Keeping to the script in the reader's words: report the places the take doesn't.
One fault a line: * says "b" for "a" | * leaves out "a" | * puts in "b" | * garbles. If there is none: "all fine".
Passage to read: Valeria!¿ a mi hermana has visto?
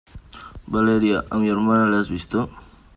* puts in "la"